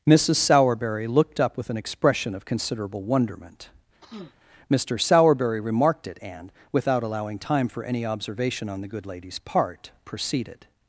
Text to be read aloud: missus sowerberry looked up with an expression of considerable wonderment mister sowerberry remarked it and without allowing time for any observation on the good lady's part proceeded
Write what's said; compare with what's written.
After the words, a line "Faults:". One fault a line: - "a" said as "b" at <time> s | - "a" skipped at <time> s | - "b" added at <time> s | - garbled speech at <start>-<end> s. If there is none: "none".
missus sowerberry looked up with an expression of considerable wonderment mister sowerberry remarked it and without allowing time for any observation on the good lady's part proceeded
Faults:
none